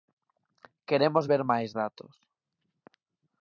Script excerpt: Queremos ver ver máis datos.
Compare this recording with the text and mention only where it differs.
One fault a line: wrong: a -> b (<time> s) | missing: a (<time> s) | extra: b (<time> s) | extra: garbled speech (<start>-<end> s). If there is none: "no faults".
missing: ver (1.4 s)